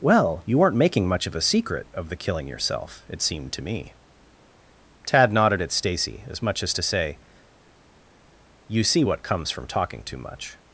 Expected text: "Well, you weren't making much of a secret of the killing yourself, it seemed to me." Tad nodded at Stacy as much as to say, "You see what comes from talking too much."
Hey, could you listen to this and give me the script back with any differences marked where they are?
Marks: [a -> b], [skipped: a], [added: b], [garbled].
"Well, you weren't making much of a secret of the killing yourself, it seemed to me." Tad nodded at Stacy as much as to say, "You see what comes from talking too much."